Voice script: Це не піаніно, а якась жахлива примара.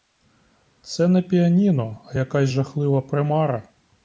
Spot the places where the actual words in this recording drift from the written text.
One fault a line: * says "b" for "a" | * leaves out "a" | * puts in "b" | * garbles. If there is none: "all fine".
all fine